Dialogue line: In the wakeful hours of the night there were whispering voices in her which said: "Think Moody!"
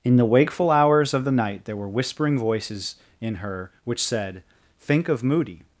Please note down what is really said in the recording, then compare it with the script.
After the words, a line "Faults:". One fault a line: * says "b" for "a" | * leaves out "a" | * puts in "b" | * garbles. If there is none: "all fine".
In the wakeful hours of the night there were whispering voices in her which said: "Think of Moody!"
Faults:
* puts in "of"